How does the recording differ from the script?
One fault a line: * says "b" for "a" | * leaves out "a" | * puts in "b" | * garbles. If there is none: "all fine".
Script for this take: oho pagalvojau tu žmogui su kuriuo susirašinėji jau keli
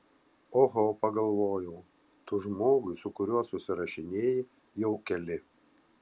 all fine